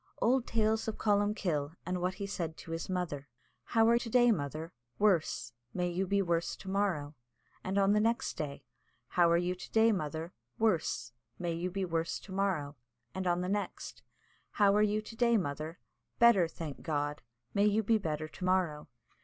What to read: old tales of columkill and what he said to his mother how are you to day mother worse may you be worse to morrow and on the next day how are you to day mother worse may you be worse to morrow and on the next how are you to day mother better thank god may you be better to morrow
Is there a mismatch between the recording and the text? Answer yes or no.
yes